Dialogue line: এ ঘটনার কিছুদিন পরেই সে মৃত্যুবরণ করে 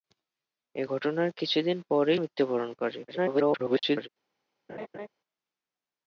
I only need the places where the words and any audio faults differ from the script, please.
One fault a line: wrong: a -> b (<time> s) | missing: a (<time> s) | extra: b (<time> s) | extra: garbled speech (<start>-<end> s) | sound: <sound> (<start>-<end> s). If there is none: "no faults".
missing: সে (2.2 s)
extra: garbled speech (3.1-4.1 s)
sound: laugh (4.7-5.1 s)